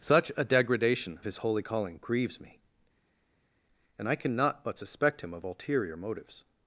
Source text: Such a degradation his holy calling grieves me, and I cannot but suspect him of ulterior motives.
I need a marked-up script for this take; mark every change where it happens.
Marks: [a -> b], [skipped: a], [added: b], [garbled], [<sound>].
Such a degradation his holy calling grieves me, and I cannot but suspect him of ulterior motives.